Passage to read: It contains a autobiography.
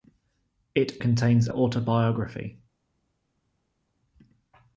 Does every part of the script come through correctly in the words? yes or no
yes